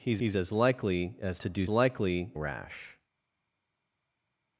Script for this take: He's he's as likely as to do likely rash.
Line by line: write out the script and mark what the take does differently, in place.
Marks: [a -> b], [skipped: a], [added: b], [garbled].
He's he's as likely as to do likely rash.